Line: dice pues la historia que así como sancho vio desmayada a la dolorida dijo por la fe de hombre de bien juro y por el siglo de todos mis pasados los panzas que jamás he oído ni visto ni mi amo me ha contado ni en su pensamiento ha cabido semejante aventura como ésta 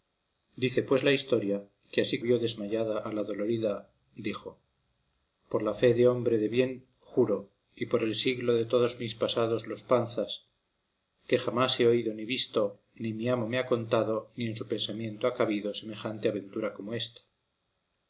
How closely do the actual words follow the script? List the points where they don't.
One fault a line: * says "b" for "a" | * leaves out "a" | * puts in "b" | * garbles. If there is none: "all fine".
* leaves out "como sancho"